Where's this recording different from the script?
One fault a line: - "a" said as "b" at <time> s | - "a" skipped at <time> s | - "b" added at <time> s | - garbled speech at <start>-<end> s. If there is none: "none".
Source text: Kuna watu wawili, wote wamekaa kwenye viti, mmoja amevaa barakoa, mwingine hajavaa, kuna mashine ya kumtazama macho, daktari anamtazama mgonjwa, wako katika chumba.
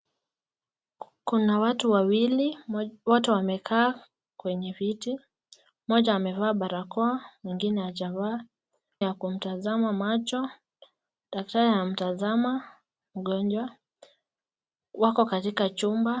- "kuna mashine" skipped at 8.4 s